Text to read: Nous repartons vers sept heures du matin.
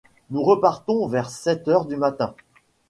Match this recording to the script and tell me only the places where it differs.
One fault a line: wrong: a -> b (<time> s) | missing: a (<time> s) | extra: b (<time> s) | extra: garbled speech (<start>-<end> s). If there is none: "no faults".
no faults